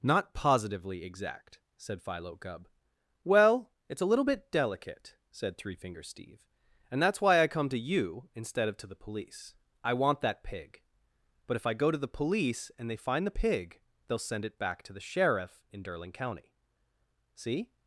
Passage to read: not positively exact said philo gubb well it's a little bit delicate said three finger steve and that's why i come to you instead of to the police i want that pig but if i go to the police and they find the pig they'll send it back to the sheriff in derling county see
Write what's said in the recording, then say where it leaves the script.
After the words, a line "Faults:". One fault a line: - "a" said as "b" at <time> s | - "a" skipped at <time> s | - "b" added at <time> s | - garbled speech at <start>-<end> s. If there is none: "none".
not positively exact said philo gubb well it's a little bit delicate said three finger steve and that's why i come to you instead of to the police i want that pig but if i go to the police and they find the pig they'll send it back to the sheriff in derling county see
Faults:
none